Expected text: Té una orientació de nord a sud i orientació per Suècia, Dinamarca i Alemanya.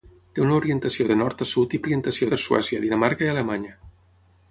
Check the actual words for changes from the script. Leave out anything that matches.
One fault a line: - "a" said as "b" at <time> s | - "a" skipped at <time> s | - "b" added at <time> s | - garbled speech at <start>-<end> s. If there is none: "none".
none